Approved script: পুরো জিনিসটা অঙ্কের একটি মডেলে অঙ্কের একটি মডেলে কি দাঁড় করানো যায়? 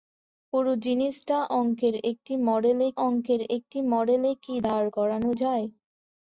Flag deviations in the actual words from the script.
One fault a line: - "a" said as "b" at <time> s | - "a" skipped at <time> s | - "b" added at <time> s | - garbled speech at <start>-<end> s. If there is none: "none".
none